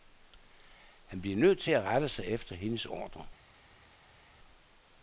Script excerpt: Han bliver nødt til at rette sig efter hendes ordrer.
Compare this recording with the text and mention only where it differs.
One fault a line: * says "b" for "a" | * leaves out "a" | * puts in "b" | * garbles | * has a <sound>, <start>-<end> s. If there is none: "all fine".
all fine